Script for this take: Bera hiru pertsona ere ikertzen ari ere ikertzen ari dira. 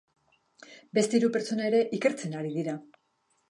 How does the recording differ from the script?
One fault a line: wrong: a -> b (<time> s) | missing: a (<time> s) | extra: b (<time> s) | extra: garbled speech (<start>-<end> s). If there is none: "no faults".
wrong: Bera -> Beste (1.0 s)
missing: ere ikertzen ari (2.6 s)